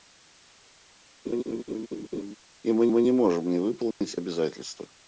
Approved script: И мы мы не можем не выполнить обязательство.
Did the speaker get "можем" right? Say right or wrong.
right